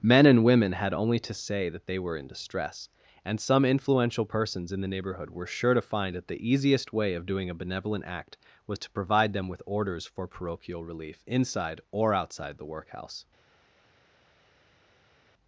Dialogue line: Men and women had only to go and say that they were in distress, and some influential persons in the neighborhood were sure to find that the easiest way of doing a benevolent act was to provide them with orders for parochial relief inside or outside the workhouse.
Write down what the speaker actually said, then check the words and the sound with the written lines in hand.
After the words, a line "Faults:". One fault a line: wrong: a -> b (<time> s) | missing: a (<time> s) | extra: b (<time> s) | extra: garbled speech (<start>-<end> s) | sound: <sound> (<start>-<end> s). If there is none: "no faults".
Men and women had only to say that they were in distress, and some influential persons in the neighborhood were sure to find that the easiest way of doing a benevolent act was to provide them with orders for parochial relief inside or outside the workhouse.
Faults:
missing: go and (1.3 s)